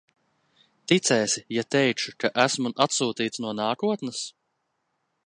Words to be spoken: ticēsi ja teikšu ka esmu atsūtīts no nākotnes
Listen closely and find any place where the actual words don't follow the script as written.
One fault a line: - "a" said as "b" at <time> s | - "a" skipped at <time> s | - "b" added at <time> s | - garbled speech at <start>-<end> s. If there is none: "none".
none